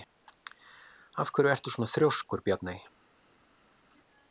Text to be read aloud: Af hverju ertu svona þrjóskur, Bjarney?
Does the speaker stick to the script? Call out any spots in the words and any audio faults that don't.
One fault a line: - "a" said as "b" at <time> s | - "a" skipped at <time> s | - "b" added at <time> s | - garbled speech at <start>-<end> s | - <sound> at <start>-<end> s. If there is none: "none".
none